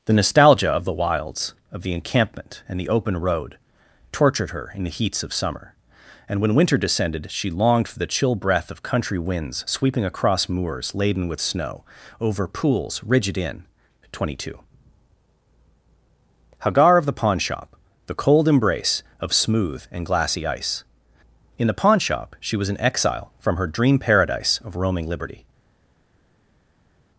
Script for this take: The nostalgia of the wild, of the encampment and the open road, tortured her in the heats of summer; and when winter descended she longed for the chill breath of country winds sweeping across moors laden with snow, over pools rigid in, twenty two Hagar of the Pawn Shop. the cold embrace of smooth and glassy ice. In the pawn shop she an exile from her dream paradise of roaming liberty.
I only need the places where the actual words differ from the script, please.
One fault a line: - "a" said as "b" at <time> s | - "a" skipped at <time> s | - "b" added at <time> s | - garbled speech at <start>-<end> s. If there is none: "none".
- "wild" said as "wilds" at 0.9 s
- "was" added at 22.6 s